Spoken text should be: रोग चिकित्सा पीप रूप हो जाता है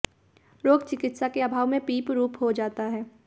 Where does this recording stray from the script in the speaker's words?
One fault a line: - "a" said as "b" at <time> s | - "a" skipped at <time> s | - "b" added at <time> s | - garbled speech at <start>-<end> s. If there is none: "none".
- "के अभाव में" added at 1.3 s